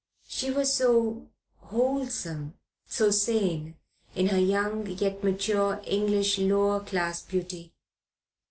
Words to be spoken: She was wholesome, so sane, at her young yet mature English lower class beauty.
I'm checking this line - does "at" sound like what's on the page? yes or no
no